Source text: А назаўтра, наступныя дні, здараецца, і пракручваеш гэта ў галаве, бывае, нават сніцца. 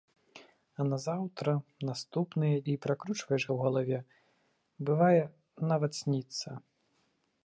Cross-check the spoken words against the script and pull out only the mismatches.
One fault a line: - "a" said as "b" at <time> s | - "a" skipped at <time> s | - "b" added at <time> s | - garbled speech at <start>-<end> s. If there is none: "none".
- "дні здараецца" skipped at 2.6 s
- "гэта" skipped at 3.4 s